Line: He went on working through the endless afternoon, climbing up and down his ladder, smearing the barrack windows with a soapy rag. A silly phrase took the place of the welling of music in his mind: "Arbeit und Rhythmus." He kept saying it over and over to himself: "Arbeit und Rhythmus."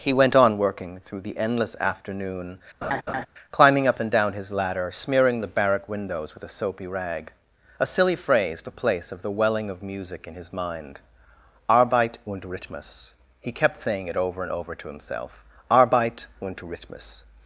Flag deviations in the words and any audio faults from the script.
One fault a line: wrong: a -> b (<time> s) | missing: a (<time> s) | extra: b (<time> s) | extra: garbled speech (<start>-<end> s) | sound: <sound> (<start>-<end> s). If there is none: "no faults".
sound: laugh (2.8-3.3 s)
missing: took (8.6 s)